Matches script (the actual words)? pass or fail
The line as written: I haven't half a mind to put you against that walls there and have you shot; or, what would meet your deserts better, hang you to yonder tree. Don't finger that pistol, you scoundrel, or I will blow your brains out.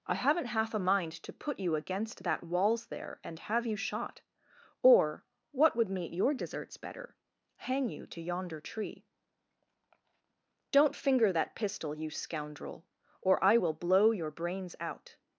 pass